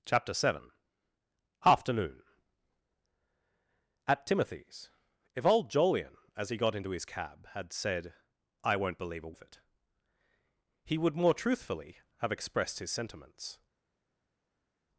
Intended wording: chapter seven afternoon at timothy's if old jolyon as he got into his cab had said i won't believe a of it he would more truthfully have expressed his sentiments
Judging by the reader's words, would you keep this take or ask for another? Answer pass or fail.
pass